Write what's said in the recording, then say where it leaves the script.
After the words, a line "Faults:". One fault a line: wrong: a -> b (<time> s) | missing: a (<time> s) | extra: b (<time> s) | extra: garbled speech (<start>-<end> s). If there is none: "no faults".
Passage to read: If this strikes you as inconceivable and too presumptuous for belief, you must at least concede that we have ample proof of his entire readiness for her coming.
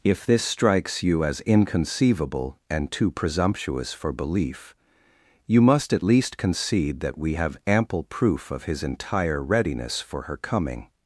If this strikes you as inconceivable and too presumptuous for belief, you must at least concede that we have ample proof of his entire readiness for her coming.
Faults:
no faults